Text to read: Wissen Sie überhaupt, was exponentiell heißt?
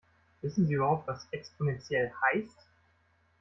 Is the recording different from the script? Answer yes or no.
no